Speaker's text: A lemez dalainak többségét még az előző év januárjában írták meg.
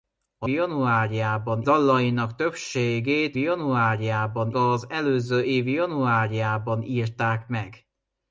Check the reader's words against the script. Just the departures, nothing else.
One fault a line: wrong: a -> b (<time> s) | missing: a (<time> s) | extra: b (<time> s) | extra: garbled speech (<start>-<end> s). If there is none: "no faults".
wrong: lemez -> januárjában (0.5 s)
wrong: még -> januárjában (3.4 s)